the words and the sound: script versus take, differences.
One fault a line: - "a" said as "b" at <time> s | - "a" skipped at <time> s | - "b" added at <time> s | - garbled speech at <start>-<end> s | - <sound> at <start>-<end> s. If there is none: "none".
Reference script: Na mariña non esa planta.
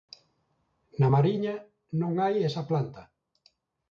- "hai" added at 2.2 s